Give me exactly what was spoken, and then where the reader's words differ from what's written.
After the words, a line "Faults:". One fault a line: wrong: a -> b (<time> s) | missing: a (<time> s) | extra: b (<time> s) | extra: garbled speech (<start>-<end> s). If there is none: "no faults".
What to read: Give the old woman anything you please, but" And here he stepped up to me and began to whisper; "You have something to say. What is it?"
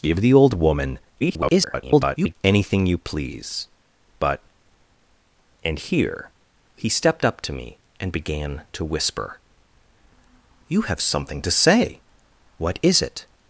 Give the old woman [garbled] anything you please, but" And here he stepped up to me and began to whisper; "You have something to say. What is it?"
Faults:
extra: garbled speech (1.2-2.4 s)